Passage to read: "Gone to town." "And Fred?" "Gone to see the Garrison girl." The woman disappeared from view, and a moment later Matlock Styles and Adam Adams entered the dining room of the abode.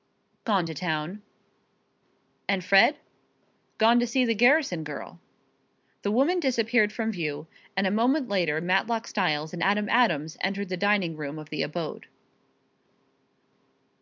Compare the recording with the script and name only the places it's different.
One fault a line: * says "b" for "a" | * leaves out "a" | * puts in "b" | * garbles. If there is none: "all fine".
all fine